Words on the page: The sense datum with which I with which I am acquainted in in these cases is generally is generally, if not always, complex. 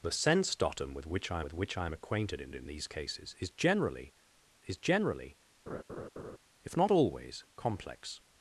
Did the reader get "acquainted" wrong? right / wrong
right